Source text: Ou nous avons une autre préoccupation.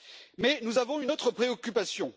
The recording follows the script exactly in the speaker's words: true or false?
false